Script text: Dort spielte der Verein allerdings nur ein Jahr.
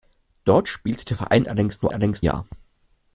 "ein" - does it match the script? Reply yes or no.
no